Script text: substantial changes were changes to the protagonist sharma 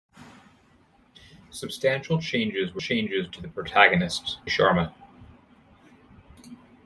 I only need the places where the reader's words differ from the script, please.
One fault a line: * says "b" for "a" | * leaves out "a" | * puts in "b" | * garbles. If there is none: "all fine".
all fine